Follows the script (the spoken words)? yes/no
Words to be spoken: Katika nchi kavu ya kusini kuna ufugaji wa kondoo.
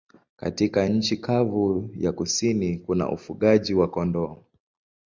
yes